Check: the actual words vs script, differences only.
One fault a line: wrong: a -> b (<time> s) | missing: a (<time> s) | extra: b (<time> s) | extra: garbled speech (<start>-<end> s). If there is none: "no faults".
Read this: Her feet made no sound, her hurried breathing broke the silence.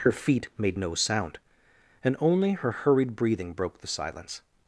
extra: and only (2.0 s)